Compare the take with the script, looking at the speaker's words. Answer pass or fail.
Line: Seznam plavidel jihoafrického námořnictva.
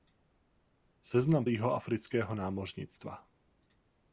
fail